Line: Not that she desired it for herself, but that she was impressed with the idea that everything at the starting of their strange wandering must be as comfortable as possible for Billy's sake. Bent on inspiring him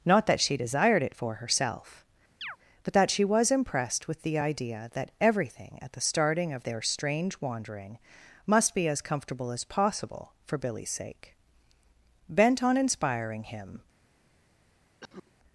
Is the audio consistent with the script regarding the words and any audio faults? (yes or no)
no